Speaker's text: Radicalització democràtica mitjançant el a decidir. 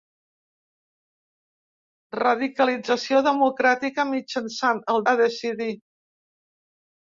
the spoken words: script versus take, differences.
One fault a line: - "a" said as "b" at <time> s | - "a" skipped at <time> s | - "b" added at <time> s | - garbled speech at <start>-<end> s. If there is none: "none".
none